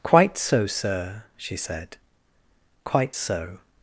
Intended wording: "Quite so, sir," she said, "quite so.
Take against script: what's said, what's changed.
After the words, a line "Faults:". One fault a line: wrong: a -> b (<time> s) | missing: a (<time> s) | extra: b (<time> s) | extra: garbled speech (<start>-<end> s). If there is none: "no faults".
"Quite so, sir," she said, "quite so.
Faults:
no faults